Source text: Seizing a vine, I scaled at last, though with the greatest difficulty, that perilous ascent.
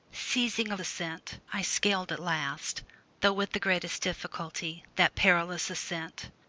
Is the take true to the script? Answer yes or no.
no